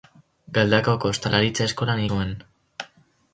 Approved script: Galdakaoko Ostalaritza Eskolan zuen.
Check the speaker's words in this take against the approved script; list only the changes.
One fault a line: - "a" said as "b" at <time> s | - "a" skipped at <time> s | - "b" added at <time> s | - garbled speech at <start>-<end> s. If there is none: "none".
none